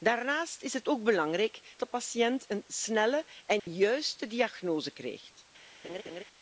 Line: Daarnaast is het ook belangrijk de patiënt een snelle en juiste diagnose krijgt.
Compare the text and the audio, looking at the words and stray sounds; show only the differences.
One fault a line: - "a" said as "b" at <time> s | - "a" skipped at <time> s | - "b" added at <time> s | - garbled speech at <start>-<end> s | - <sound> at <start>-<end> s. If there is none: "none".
- dropout at 3.6-3.7 s
- laugh at 5.8-6.2 s